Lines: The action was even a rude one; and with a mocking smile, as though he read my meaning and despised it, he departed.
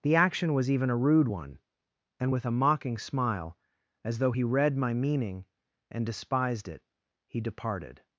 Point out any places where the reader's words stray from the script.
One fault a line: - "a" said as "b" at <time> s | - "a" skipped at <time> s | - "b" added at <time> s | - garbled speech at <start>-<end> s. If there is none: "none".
none